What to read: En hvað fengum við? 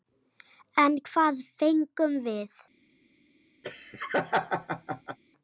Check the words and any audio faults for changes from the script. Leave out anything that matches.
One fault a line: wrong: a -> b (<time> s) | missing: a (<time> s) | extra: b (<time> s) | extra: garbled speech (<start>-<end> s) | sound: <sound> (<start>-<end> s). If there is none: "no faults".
sound: laugh (3.6-5.2 s)